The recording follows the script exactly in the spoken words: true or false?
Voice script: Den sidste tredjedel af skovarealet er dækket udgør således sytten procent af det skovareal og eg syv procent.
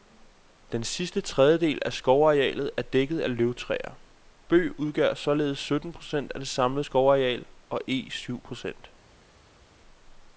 false